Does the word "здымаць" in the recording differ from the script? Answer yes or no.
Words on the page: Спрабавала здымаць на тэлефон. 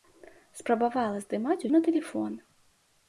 no